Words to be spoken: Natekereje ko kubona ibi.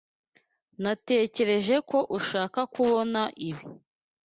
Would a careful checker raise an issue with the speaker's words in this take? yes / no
yes